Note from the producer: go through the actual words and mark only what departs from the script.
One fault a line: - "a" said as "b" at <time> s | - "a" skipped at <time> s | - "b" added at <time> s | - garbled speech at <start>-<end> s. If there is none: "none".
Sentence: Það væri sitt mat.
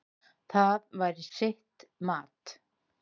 none